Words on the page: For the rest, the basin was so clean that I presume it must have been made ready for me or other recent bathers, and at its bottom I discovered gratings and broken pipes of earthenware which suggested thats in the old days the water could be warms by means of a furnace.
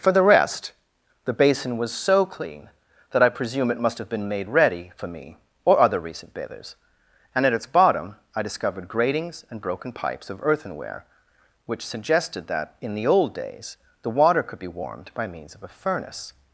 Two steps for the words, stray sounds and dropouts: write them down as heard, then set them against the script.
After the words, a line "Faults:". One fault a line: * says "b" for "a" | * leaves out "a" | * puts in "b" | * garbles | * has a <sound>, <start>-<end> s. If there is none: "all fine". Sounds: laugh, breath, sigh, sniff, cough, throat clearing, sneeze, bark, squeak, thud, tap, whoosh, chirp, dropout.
For the rest, the basin was so clean that I presume it must have been made ready for me or other recent bathers, and at its bottom I discovered gratings and broken pipes of earthenware which suggested that in the old days the water could be warmed by means of a furnace.
Faults:
* says "that" for "thats"
* says "warmed" for "warms"